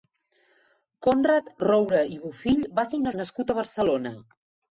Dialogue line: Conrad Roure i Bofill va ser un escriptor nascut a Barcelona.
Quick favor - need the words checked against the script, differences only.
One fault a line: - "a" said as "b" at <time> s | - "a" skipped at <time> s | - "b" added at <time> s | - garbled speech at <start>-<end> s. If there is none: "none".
- "escriptor" skipped at 3.1 s